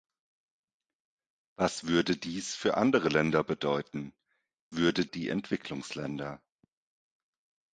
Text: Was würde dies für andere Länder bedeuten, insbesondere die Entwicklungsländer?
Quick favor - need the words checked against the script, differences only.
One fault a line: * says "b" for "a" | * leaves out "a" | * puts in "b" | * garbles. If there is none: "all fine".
* says "würde" for "insbesondere"